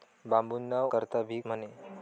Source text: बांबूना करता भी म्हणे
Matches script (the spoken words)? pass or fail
pass